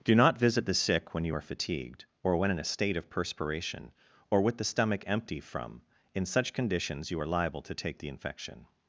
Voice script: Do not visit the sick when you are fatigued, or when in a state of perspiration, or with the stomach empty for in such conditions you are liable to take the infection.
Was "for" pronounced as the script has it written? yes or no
no